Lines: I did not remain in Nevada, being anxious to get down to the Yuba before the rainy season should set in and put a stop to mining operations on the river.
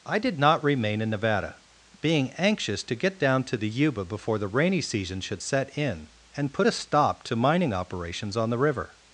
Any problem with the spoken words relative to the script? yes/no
no